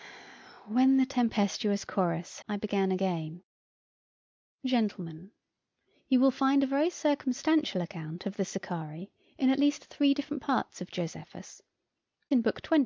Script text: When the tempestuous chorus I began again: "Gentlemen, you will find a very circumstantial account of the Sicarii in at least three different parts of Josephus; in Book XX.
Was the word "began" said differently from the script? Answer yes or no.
no